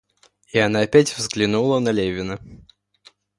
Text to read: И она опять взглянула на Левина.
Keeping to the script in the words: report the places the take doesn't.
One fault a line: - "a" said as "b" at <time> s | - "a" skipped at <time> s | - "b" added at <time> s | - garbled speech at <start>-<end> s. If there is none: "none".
none